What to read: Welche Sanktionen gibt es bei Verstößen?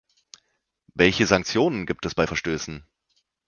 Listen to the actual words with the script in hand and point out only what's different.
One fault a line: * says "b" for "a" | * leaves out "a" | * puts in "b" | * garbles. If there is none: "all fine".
all fine